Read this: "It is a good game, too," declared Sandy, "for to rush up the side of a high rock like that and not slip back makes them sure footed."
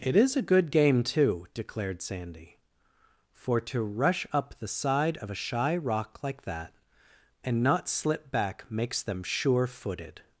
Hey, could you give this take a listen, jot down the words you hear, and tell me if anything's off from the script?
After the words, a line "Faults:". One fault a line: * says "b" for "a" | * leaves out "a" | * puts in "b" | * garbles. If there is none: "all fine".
"It is a good game, too," declared Sandy, "for to rush up the side of a shy rock like that and not slip back makes them sure footed."
Faults:
* says "shy" for "high"